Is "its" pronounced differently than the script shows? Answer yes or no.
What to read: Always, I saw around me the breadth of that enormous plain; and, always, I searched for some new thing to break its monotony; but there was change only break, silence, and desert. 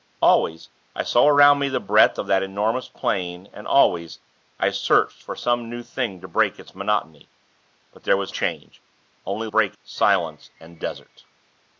no